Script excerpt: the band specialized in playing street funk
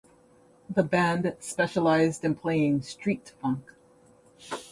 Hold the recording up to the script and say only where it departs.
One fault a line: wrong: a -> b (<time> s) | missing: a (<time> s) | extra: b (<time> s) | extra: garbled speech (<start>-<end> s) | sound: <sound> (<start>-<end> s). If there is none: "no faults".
no faults